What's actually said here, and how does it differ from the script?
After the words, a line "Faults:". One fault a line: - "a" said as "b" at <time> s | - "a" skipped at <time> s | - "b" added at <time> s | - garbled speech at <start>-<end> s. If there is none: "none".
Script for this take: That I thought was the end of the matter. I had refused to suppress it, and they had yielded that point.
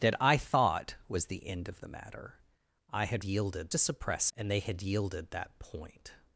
That I thought was the end of the matter. I had yielded to suppress and they had yielded that point.
Faults:
- "refused" said as "yielded" at 3.2 s
- "it" skipped at 4.3 s